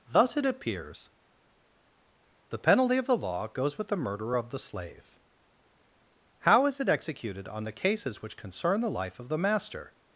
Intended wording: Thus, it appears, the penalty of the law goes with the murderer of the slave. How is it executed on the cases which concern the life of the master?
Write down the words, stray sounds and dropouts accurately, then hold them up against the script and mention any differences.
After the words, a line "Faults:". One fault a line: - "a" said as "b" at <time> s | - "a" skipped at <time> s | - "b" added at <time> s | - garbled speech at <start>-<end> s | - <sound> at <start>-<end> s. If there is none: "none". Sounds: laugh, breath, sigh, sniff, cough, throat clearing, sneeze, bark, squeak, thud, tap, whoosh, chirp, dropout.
Thus, it appears, the penalty of the law goes with the murderer of the slave. How is it executed on the cases which concern the life of the master?
Faults:
none